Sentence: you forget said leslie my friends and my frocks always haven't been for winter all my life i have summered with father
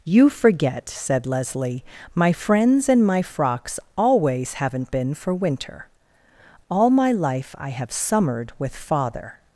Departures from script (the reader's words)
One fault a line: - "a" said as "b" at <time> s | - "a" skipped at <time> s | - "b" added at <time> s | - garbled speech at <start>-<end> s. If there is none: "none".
none